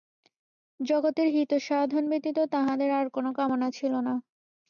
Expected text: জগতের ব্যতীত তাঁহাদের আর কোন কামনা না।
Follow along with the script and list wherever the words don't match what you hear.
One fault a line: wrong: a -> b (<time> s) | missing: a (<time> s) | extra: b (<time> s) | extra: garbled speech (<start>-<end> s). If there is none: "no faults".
extra: হিতসাধন (1.3 s)
extra: ছিল (3.7 s)